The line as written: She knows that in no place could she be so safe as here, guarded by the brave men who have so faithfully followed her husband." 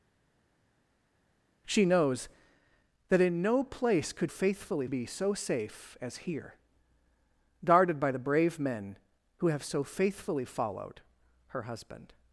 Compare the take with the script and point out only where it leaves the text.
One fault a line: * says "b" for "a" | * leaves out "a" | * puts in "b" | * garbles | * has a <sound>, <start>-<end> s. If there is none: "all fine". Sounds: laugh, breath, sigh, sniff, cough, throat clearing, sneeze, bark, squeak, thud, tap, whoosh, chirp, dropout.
* says "faithfully" for "she"